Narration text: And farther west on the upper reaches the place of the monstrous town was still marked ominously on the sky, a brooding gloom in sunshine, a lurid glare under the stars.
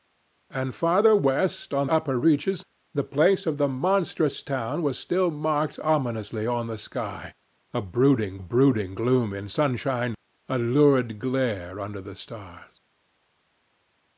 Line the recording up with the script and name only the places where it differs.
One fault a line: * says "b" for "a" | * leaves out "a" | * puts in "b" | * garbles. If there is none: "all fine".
* leaves out "the"
* puts in "brooding"